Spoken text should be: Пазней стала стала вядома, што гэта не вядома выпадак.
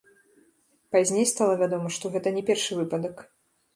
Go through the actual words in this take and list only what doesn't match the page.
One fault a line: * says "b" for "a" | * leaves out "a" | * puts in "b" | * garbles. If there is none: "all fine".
* leaves out "стала"
* says "першы" for "вядома"